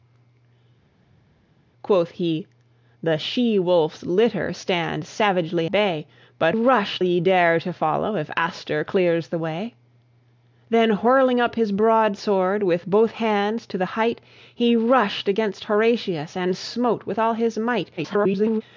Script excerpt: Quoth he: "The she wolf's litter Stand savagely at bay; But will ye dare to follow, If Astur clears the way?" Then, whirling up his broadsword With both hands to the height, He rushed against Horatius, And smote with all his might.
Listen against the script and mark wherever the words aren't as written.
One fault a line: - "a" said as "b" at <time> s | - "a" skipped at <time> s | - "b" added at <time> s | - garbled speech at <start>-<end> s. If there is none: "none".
- "at" skipped at 5.7 s
- "will" said as "rushed" at 6.5 s
- garbled speech at 18.0-18.6 s